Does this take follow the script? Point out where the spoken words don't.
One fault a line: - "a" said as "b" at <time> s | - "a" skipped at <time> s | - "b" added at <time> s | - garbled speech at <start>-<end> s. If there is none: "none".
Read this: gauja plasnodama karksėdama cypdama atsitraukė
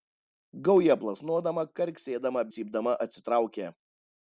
none